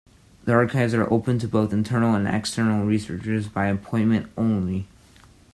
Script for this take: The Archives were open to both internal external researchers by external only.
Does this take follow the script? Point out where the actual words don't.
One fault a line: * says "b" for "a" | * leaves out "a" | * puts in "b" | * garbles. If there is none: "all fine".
* says "are" for "were"
* puts in "and"
* says "appointment" for "external"